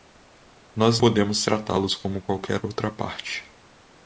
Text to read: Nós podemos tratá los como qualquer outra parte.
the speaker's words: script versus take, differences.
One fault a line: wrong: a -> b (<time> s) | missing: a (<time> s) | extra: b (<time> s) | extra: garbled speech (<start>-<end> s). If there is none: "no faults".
no faults